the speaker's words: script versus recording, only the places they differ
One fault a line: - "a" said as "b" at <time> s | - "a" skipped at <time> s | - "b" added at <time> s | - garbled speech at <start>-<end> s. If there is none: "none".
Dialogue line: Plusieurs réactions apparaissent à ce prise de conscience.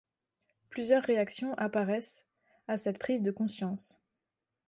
- "ce" said as "cette" at 2.8 s